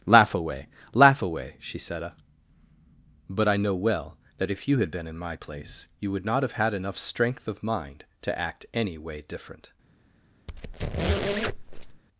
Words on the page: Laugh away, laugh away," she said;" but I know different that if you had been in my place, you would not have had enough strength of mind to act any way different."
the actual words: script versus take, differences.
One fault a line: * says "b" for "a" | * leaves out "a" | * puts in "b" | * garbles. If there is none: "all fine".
* says "well" for "different"